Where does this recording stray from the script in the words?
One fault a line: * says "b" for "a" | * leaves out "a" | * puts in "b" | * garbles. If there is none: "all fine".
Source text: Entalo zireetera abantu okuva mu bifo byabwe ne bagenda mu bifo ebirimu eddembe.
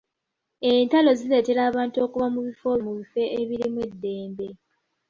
* leaves out "byabwe ne bagenda"